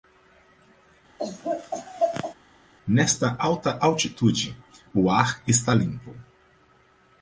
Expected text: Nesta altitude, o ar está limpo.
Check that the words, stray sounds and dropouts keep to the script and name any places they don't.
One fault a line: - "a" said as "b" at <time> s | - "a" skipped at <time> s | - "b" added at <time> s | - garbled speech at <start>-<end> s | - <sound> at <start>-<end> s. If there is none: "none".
- laugh at 1.2-2.3 s
- "alta" added at 3.4 s